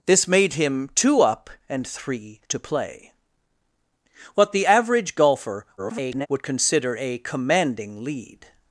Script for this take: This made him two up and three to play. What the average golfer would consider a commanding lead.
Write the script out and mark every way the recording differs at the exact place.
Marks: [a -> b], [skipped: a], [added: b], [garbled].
This made him two up and three to play. What the average golfer [garbled] would consider a commanding lead.